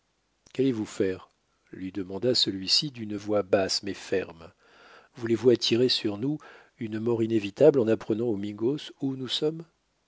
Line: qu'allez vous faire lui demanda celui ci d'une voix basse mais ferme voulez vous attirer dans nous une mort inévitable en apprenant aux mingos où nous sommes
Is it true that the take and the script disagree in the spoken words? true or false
true